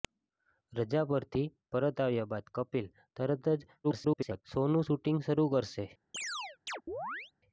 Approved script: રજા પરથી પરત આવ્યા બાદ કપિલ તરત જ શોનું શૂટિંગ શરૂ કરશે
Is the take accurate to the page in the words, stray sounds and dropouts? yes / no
no